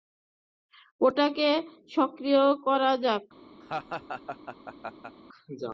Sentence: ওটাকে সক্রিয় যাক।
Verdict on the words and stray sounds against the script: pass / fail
fail